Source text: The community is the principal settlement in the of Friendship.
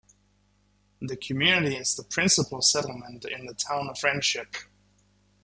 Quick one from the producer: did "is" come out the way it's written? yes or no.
yes